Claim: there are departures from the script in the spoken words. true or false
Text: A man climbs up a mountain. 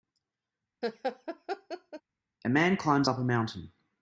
false